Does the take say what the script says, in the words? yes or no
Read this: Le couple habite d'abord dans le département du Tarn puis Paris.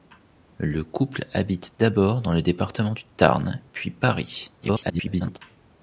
no